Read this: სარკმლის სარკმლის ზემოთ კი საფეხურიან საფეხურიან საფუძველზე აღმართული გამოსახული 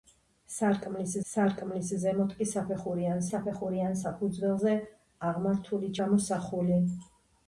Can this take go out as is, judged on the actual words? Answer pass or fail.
pass